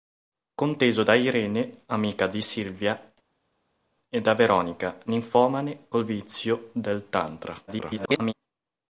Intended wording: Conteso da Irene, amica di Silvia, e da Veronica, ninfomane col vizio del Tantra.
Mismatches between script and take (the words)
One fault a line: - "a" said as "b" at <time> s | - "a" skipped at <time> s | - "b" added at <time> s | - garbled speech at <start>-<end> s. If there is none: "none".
- garbled speech at 7.7-8.3 s